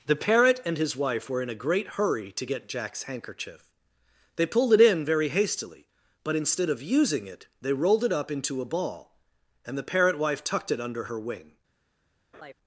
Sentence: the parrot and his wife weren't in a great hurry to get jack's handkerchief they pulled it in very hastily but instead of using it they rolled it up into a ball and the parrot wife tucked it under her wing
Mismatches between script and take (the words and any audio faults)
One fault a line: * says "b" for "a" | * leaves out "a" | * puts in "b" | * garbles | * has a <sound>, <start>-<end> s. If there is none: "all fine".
* says "were" for "weren't"
* has a laugh, 12.3-12.5 s